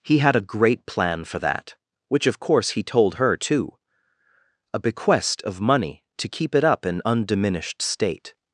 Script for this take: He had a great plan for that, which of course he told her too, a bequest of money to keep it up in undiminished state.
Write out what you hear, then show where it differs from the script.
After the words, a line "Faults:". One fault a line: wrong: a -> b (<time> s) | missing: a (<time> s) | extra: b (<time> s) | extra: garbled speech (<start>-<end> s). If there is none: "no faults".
He had a great plan for that, which of course he told her too, a bequest of money to keep it up in undiminished state.
Faults:
no faults